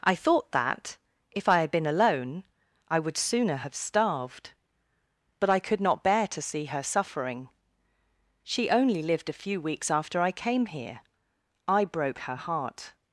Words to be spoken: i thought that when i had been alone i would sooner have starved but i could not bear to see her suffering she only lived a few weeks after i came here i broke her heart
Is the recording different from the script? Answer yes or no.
yes